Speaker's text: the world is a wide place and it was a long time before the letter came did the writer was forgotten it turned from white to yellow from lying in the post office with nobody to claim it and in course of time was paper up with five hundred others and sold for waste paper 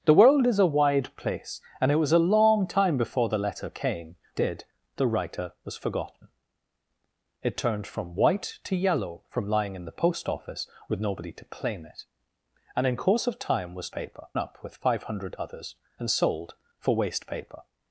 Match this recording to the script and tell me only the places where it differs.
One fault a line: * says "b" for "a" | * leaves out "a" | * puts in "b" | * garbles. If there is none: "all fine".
all fine